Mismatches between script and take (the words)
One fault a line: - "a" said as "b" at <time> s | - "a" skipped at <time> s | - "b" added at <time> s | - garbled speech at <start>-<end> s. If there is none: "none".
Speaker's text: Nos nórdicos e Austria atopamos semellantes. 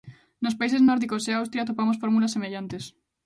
- "países" added at 0.6 s
- "fórmulas" added at 2.0 s